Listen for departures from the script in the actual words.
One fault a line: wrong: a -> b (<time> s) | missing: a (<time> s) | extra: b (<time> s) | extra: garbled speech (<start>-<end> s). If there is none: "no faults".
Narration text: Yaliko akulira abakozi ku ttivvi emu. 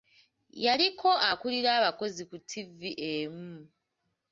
no faults